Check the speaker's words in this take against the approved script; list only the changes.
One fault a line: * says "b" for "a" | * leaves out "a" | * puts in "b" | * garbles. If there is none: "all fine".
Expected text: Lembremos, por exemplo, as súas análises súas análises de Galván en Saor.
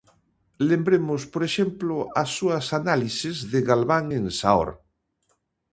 * leaves out "súas análises"